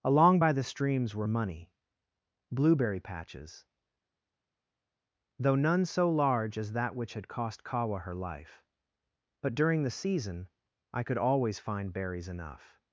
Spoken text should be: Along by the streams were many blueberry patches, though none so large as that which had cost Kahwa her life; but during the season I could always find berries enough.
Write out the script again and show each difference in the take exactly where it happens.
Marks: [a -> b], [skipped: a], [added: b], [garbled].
Along by the streams were [many -> money] blueberry patches, though none so large as that which had cost Kahwa her life; but during the season I could always find berries enough.